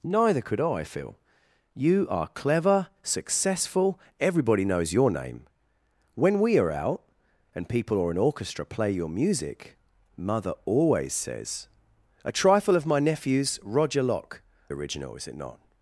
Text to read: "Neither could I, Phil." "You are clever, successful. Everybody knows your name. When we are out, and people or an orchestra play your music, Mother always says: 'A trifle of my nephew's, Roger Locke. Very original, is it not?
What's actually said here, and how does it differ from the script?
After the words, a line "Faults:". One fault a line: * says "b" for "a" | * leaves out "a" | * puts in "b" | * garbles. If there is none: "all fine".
"Neither could I, Phil." "You are clever, successful. Everybody knows your name. When we are out, and people or an orchestra play your music, Mother always says: 'A trifle of my nephew's, Roger Locke. Original, is it not?
Faults:
* leaves out "Very"